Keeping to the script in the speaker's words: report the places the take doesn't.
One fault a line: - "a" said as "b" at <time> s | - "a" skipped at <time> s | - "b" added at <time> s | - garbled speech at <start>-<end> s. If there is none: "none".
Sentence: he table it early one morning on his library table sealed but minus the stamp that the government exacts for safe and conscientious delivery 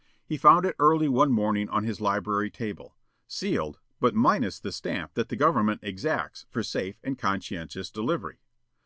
- "table" said as "found" at 0.3 s